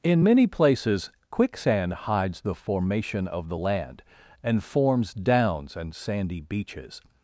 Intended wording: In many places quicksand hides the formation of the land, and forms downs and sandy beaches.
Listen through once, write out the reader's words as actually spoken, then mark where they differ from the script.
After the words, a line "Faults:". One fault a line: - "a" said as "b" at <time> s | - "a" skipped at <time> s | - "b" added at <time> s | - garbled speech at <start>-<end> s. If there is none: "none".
In many places quicksand hides the formation of the land, and forms downs and sandy beaches.
Faults:
none